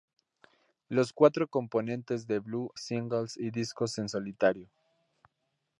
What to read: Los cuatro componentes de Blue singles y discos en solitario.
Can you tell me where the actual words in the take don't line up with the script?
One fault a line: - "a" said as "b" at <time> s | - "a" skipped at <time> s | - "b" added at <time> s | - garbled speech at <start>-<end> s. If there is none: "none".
none